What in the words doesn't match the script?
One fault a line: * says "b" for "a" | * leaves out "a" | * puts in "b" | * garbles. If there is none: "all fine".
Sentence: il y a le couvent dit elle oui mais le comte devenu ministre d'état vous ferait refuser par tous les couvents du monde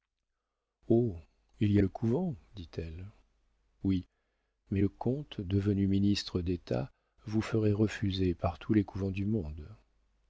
all fine